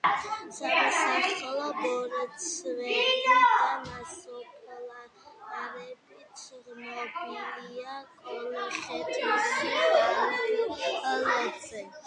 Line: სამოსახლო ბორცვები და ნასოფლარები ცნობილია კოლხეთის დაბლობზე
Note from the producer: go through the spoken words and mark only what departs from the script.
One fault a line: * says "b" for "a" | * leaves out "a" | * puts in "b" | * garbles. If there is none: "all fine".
all fine